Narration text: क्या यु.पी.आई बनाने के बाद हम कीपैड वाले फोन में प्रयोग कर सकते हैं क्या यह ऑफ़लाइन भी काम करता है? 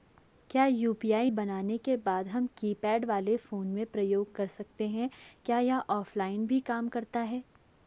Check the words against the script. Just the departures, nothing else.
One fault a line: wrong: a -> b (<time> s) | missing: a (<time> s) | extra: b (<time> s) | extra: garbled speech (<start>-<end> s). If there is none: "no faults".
no faults